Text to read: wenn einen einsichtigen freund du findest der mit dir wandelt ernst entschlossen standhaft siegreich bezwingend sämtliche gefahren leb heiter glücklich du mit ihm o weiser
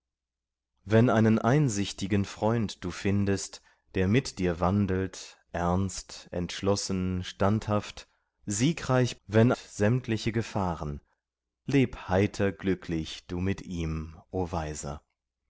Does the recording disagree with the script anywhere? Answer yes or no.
yes